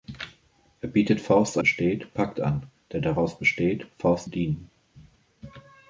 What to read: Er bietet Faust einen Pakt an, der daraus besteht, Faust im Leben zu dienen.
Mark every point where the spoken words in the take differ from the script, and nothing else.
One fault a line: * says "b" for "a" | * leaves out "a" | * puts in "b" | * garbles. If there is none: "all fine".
* says "besteht" for "einen"
* leaves out "im Leben zu"